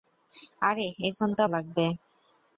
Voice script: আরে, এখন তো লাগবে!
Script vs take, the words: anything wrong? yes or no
no